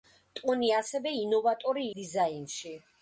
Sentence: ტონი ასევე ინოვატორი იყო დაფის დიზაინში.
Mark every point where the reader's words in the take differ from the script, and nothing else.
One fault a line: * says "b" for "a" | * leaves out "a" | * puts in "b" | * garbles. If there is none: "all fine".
* leaves out "იყო დაფის"